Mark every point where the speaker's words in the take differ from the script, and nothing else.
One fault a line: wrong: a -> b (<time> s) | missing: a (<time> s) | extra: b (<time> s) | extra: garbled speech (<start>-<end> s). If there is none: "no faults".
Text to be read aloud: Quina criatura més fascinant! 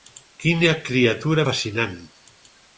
missing: més (1.4 s)